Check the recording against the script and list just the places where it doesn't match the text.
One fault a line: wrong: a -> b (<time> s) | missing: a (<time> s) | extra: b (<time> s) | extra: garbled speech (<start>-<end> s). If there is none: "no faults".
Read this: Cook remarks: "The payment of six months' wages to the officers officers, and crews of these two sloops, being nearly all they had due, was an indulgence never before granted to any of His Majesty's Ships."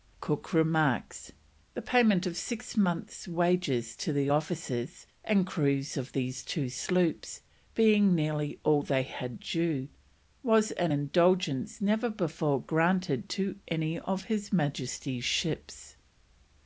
missing: officers (5.1 s)